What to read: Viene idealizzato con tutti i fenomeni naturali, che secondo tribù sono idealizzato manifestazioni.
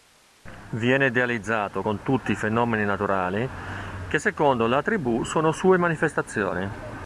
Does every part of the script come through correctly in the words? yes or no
no